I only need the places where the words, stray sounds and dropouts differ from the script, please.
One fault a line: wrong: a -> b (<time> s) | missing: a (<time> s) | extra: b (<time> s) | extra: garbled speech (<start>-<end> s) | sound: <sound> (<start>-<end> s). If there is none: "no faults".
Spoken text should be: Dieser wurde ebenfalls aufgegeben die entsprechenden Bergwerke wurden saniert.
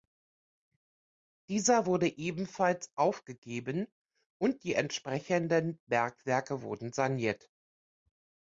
extra: und (4.4 s)